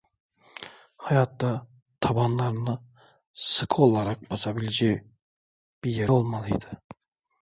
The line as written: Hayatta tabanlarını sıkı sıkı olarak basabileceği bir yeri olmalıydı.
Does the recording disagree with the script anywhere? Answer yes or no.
yes